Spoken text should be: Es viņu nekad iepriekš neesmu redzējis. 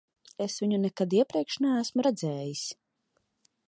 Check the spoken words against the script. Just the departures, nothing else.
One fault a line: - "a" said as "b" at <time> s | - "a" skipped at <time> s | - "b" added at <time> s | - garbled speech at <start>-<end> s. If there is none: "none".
none